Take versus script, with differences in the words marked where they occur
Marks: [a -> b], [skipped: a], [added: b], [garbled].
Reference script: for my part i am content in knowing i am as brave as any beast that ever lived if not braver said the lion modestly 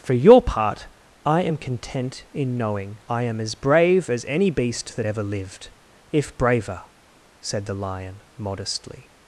for [my -> your] part i am content in knowing i am as brave as any beast that ever lived if [skipped: not] braver said the lion modestly